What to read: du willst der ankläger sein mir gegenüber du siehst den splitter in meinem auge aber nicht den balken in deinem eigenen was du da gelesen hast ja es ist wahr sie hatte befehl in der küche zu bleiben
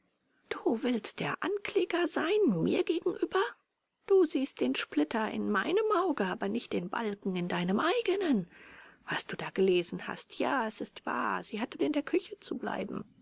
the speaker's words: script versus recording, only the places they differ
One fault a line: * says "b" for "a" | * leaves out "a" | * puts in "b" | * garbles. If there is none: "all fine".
* leaves out "befehl"